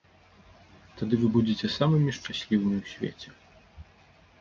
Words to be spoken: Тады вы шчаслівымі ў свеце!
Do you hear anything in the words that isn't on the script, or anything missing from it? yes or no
yes